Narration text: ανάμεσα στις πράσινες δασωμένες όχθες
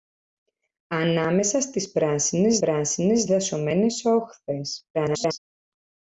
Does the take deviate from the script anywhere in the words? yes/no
yes